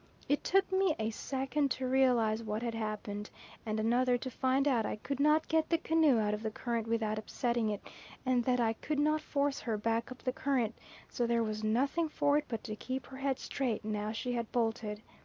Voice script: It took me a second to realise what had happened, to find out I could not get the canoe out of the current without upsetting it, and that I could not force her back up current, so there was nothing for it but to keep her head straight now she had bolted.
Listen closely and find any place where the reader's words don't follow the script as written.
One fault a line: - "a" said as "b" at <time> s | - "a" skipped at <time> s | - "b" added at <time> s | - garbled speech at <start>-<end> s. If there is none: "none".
- "and another" added at 3.6 s
- "the" added at 10.2 s